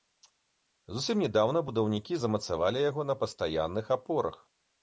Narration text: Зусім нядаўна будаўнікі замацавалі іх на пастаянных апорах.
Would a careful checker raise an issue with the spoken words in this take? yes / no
yes